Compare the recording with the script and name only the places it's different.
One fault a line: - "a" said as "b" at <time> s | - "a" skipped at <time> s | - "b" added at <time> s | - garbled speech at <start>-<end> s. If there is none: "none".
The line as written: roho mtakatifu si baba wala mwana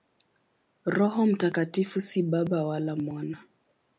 none